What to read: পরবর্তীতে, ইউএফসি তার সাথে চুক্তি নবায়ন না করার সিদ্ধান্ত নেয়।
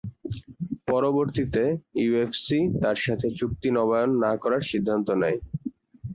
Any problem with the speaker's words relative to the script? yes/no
no